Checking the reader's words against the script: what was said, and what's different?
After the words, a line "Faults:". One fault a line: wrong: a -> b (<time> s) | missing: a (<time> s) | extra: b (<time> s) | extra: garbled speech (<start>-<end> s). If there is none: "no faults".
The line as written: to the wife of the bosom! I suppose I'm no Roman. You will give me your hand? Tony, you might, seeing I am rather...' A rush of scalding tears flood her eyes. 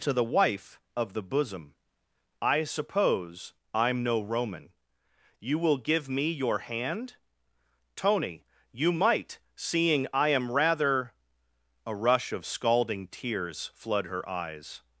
to the wife of the bosom! I suppose I'm no Roman. You will give me your hand? Tony, you might, seeing I am rather...' A rush of scalding tears flood her eyes.
Faults:
no faults